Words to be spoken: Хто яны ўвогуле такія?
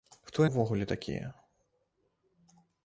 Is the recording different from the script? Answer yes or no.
yes